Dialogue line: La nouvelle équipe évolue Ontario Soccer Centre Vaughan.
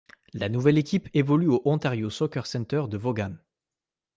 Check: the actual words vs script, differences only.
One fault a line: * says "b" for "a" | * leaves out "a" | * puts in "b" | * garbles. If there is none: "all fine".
* puts in "au"
* puts in "de"